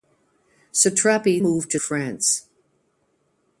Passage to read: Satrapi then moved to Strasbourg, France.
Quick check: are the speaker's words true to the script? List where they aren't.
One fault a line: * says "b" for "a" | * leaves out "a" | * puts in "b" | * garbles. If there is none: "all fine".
* leaves out "then"
* leaves out "Strasbourg"